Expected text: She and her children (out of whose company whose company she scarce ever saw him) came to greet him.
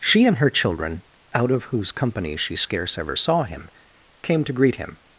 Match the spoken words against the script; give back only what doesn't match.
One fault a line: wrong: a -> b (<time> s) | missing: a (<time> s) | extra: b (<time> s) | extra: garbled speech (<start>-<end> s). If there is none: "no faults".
missing: whose company (2.4 s)